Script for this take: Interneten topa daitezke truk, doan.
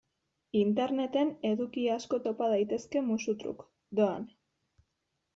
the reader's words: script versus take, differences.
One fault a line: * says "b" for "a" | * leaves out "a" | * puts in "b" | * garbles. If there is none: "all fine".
* puts in "eduki asko"
* puts in "musu"